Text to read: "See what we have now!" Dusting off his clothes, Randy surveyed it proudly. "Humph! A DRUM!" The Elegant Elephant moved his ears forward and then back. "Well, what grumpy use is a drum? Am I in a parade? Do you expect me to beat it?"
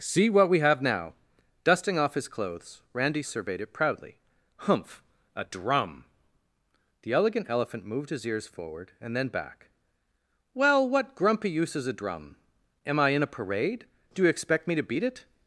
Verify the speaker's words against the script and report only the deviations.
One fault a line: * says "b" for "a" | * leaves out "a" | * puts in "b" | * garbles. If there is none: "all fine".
all fine